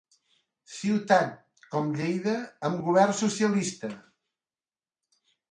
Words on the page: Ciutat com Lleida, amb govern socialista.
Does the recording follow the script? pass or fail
pass